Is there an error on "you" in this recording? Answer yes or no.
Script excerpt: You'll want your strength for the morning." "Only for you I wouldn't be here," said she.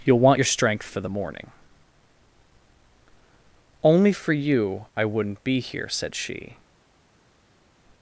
no